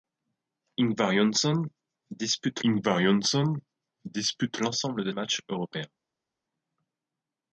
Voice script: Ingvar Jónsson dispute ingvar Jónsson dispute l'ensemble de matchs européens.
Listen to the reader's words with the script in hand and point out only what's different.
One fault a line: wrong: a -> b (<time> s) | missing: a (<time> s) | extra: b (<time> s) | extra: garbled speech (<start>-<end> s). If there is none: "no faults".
no faults